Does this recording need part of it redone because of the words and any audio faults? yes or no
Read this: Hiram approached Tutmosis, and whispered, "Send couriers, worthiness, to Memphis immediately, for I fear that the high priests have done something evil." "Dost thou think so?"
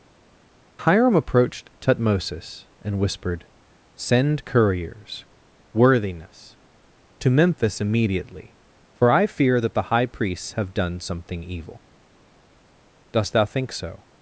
no